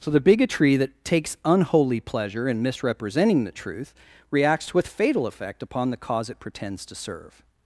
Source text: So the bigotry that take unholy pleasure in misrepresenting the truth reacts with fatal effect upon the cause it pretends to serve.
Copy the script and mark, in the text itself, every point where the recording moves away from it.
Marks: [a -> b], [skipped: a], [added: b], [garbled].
So the bigotry that [take -> takes] unholy pleasure in misrepresenting the truth reacts with fatal effect upon the cause it pretends to serve.